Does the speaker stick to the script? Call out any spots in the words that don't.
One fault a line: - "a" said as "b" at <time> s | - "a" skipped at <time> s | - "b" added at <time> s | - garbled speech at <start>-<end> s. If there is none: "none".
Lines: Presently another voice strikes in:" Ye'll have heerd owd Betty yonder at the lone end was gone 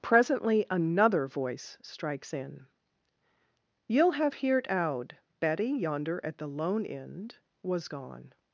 none